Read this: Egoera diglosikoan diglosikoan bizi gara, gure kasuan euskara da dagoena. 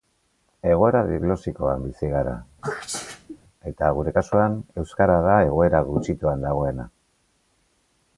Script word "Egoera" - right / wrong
right